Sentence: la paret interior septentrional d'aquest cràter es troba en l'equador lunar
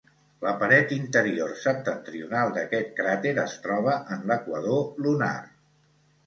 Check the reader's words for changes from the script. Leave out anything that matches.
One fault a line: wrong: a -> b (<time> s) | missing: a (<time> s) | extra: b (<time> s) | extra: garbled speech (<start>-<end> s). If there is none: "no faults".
no faults